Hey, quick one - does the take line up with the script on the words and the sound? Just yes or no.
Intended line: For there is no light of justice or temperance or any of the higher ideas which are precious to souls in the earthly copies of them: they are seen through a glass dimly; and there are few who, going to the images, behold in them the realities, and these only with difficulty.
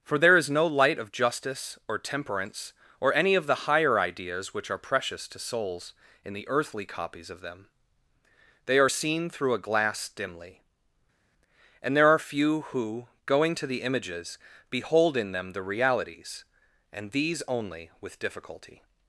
yes